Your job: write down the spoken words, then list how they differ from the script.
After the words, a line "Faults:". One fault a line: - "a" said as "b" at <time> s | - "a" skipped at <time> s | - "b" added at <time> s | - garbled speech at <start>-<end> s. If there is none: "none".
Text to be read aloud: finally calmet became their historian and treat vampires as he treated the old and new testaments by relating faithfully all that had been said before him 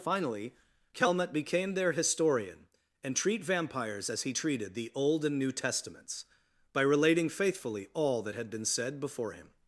finally calmet became their historian and treat vampires as he treated the old and new testaments by relating faithfully all that had been said before him
Faults:
none